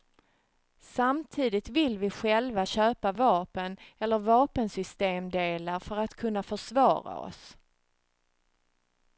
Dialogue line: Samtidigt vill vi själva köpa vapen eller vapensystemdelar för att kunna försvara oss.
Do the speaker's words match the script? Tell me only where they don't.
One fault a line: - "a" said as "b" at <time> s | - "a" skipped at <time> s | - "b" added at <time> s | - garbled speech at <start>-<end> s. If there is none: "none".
none